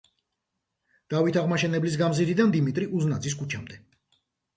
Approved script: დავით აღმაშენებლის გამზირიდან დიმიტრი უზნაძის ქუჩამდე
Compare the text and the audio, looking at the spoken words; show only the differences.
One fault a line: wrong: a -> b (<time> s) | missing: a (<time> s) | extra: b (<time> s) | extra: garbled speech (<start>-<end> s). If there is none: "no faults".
no faults